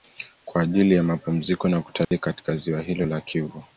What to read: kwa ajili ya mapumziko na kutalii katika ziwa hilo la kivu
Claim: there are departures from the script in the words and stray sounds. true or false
true